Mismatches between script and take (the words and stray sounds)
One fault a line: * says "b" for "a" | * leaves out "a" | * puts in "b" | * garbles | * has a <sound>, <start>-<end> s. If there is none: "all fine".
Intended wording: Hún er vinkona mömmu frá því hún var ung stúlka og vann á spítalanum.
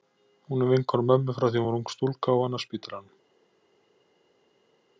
all fine